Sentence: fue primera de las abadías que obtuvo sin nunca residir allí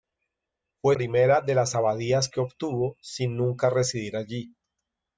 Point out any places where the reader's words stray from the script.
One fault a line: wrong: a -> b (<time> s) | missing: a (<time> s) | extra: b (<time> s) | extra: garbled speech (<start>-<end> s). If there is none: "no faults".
no faults